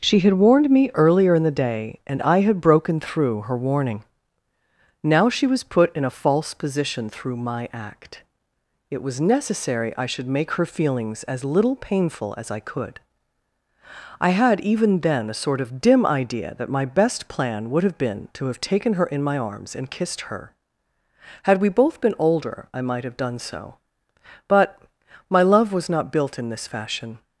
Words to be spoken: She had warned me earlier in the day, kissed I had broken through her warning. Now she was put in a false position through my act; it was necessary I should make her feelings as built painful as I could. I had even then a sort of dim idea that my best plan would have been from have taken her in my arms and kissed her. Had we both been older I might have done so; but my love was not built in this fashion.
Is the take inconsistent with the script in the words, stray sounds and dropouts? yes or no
yes